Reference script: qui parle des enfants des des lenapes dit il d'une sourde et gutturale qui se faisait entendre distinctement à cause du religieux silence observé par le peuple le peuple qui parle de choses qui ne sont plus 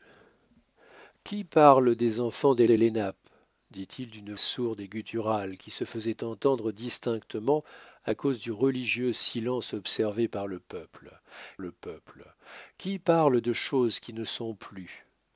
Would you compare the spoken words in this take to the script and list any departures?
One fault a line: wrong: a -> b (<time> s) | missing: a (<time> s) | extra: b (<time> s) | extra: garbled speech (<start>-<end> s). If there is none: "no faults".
no faults